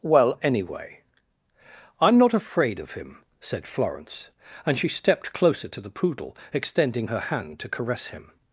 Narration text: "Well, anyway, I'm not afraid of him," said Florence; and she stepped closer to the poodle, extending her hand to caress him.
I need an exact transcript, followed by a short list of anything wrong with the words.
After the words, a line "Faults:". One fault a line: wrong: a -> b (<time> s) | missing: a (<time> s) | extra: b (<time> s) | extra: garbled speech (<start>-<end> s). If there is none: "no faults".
"Well, anyway, I'm not afraid of him," said Florence; and she stepped closer to the poodle, extending her hand to caress him.
Faults:
no faults